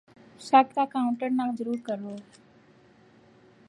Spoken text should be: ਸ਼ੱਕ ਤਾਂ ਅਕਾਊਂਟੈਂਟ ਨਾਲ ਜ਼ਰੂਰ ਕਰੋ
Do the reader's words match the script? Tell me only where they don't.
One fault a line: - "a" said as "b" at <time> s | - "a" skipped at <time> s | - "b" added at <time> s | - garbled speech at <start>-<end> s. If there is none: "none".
none